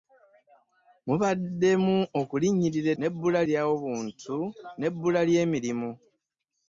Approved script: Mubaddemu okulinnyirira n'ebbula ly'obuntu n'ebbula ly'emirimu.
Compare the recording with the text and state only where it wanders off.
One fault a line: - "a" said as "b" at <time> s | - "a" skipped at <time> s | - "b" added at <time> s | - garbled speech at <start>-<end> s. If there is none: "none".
none